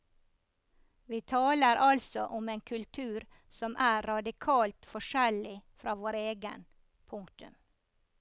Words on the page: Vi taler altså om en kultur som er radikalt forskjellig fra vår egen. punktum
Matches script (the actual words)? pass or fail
pass